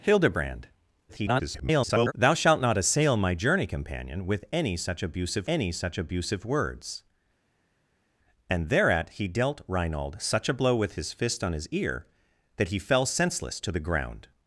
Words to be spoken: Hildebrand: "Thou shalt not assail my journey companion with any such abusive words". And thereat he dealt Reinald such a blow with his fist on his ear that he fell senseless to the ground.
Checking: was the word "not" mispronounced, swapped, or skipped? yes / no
no